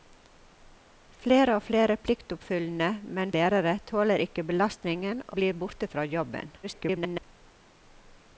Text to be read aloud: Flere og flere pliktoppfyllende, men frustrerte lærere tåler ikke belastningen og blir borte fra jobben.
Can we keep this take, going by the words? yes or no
no